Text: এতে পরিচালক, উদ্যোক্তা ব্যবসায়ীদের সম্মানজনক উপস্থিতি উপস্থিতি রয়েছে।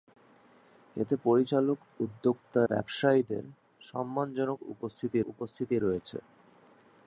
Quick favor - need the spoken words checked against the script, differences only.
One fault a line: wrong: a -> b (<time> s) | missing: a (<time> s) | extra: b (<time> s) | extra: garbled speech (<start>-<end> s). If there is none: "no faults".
no faults